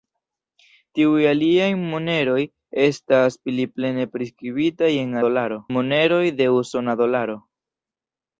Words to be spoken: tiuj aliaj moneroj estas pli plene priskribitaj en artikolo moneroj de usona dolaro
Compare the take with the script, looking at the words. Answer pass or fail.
fail